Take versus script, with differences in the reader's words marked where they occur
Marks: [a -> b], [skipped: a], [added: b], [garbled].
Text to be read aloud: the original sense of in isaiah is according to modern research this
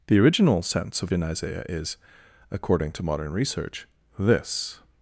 the original sense of in isaiah is according to modern research this